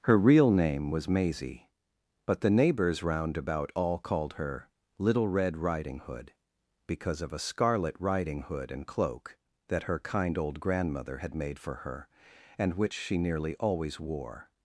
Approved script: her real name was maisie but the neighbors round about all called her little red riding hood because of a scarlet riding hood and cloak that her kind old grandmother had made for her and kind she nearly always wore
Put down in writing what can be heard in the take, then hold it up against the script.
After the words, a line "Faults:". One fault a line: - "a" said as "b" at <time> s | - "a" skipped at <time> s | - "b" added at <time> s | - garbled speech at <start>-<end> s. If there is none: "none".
her real name was maisie but the neighbors round about all called her little red riding hood because of a scarlet riding hood and cloak that her kind old grandmother had made for her and which she nearly always wore
Faults:
- "kind" said as "which" at 12.8 s